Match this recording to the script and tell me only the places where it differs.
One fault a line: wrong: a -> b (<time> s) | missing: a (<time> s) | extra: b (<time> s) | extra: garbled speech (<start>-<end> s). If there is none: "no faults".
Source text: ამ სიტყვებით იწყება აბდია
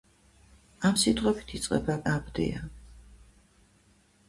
no faults